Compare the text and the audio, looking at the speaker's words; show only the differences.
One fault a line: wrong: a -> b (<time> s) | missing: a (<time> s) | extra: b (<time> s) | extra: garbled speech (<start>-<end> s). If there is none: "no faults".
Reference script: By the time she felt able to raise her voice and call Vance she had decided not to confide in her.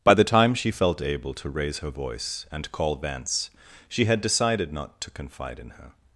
no faults